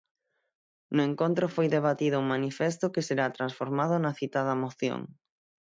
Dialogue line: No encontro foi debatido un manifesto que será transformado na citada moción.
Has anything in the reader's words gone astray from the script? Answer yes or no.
no